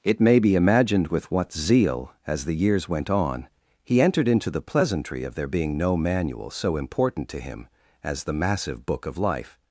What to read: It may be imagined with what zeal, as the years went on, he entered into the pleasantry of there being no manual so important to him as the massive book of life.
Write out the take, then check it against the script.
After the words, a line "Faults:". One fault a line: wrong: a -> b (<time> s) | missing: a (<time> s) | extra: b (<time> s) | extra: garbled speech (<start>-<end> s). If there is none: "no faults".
It may be imagined with what zeal, as the years went on, he entered into the pleasantry of there being no manual so important to him as the massive book of life.
Faults:
no faults